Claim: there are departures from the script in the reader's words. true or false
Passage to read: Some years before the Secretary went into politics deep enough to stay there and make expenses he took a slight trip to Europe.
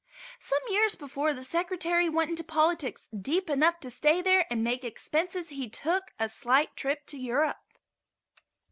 false